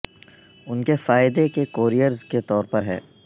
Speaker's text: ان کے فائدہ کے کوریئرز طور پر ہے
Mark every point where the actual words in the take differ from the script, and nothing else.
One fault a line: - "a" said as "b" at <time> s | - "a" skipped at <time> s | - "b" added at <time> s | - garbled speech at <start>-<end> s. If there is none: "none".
- "کے" added at 2.2 s